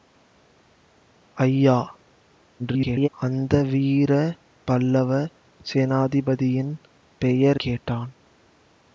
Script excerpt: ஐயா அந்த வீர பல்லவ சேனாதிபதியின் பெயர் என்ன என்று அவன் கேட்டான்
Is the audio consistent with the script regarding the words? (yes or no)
no